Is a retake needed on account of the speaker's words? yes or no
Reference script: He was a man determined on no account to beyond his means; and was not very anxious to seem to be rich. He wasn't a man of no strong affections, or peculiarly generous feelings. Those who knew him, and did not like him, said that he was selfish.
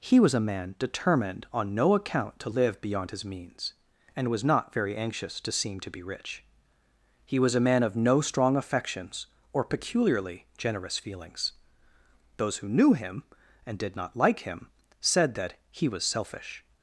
yes